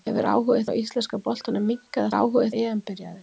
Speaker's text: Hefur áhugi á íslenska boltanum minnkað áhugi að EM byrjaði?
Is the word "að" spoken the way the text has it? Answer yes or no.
yes